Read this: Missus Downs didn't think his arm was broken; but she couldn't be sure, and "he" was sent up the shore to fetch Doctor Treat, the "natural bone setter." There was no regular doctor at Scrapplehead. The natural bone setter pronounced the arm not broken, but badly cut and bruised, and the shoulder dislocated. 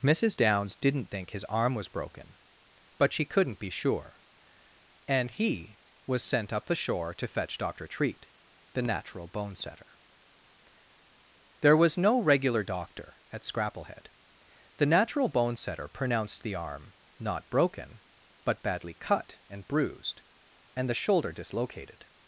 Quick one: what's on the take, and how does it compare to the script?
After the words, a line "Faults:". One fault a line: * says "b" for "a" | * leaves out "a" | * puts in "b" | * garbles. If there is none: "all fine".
Missus Downs didn't think his arm was broken; but she couldn't be sure, and "he" was sent up the shore to fetch Doctor Treat, the "natural bone setter." There was no regular doctor at Scrapplehead. The natural bone setter pronounced the arm not broken, but badly cut and bruised, and the shoulder dislocated.
Faults:
all fine